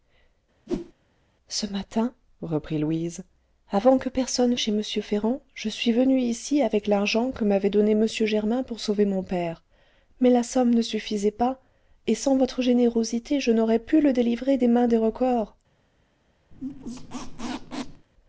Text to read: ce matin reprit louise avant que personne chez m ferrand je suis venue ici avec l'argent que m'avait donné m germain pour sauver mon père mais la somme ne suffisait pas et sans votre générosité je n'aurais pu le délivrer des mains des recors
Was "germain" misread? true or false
false